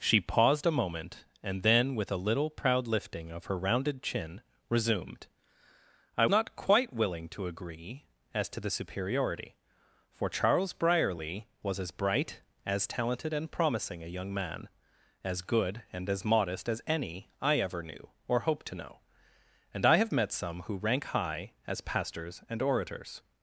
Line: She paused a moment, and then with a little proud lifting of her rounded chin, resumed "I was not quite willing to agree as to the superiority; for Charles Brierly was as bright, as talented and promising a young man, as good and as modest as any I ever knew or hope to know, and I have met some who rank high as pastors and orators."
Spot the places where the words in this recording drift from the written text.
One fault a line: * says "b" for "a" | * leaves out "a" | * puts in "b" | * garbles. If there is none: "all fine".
* leaves out "was"